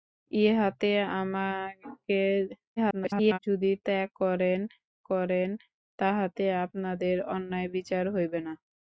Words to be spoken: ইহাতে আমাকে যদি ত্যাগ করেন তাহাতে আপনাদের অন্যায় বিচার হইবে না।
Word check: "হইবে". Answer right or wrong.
right